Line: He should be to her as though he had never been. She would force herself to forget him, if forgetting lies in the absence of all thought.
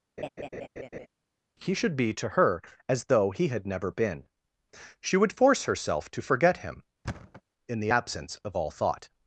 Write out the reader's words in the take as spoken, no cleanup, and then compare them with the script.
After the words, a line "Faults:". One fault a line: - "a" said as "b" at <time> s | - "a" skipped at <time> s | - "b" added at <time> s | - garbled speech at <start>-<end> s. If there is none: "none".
He should be to her as though he had never been. She would force herself to forget him, in the absence of all thought.
Faults:
- "if forgetting lies" skipped at 6.8 s